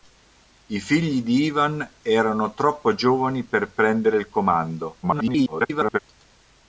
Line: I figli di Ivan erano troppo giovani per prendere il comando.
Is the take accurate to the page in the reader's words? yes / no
no